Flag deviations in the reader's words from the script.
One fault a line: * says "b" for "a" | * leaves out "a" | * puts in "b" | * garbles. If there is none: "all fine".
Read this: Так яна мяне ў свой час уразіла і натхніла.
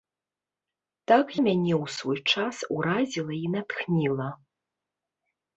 * leaves out "яна"